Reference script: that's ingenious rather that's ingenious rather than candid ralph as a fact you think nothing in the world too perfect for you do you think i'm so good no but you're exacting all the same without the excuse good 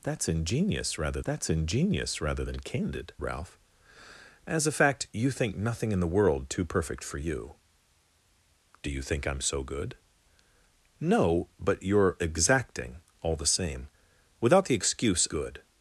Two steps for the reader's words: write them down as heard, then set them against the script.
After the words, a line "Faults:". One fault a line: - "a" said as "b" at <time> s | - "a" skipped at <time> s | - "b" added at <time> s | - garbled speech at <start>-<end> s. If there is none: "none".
that's ingenious rather that's ingenious rather than candid ralph as a fact you think nothing in the world too perfect for you do you think i'm so good no but you're exacting all the same without the excuse good
Faults:
none